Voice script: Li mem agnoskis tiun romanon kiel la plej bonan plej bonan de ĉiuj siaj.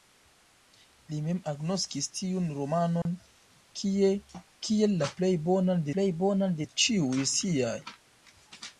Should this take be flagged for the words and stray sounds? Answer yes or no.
yes